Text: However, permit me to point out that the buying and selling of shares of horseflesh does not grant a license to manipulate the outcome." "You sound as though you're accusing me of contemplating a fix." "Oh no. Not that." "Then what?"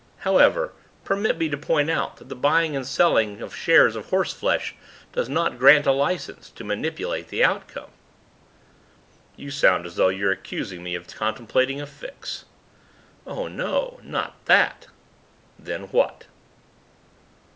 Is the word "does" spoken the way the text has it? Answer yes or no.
yes